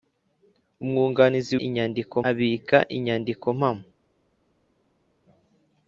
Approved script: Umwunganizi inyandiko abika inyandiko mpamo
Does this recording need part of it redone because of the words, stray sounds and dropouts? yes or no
no